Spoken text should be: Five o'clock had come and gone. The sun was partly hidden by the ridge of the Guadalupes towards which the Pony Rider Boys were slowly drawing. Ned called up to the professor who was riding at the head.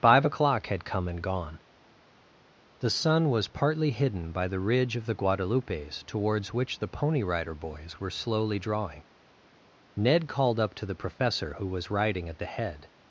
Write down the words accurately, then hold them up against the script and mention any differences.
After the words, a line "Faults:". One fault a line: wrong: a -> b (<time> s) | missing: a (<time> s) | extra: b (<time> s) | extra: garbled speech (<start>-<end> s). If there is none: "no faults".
Five o'clock had come and gone. The sun was partly hidden by the ridge of the Guadalupes towards which the Pony Rider Boys were slowly drawing. Ned called up to the professor who was riding at the head.
Faults:
no faults